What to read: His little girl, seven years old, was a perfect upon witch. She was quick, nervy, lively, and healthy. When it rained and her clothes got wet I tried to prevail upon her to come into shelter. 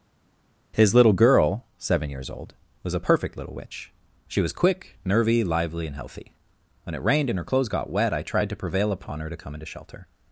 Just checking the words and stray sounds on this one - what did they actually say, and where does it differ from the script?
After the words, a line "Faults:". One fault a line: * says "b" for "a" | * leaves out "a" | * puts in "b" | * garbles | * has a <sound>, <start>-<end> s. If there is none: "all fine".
His little girl, seven years old, was a perfect little witch. She was quick, nervy, lively, and healthy. When it rained and her clothes got wet I tried to prevail upon her to come into shelter.
Faults:
* says "little" for "upon"